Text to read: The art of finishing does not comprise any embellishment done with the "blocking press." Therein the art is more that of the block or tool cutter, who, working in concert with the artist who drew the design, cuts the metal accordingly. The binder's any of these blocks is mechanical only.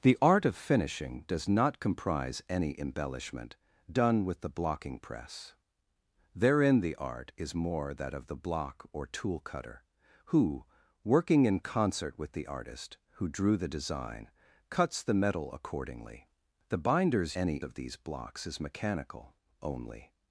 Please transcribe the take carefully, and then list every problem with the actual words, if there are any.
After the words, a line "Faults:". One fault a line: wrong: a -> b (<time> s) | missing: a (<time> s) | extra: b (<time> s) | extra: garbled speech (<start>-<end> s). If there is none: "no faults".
The art of finishing does not comprise any embellishment done with the "blocking press." Therein the art is more that of the block or tool cutter, who, working in concert with the artist who drew the design, cuts the metal accordingly. The binder's any of these blocks is mechanical only.
Faults:
no faults